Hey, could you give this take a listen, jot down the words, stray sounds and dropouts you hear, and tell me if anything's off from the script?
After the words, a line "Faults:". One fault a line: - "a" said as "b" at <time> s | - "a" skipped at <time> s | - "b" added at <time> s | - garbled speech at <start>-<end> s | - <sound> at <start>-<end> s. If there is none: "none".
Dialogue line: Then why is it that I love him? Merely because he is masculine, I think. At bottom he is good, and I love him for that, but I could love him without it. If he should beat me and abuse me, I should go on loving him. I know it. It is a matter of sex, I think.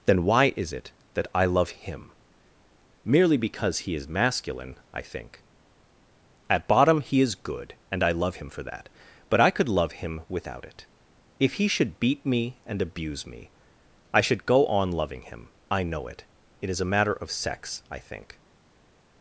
Then why is it that I love him? Merely because he is masculine, I think. At bottom he is good, and I love him for that, but I could love him without it. If he should beat me and abuse me, I should go on loving him. I know it. It is a matter of sex, I think.
Faults:
none